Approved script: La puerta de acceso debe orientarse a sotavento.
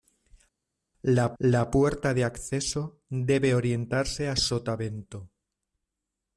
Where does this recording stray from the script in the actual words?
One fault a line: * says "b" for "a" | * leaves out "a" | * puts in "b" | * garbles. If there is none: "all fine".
* puts in "la"